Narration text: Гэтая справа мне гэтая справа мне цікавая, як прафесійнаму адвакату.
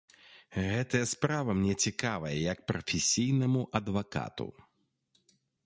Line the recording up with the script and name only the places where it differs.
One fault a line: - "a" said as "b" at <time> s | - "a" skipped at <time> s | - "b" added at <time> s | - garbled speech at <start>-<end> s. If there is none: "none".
- "гэтая справа мне" skipped at 1.8 s